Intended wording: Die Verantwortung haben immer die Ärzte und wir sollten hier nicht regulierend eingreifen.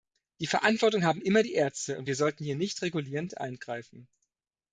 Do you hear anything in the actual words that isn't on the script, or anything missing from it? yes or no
no